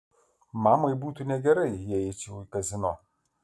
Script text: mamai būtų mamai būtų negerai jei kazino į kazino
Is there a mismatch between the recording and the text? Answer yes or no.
yes